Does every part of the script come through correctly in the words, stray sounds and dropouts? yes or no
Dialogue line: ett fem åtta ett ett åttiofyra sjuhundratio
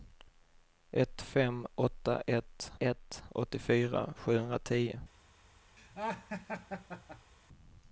no